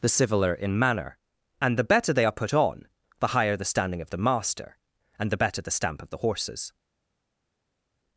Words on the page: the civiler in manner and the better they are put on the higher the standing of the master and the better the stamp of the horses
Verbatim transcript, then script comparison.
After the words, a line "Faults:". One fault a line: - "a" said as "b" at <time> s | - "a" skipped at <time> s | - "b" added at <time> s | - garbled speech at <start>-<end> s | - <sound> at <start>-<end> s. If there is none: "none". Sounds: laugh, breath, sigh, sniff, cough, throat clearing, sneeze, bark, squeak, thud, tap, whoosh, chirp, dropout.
the civiler in manner and the better they are put on the higher the standing of the master and the better the stamp of the horses
Faults:
none